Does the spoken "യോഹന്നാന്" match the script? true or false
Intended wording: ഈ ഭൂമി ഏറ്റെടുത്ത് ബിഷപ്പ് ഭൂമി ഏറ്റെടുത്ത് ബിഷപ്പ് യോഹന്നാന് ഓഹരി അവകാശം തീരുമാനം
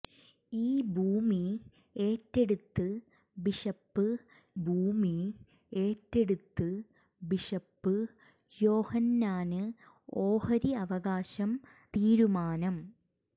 true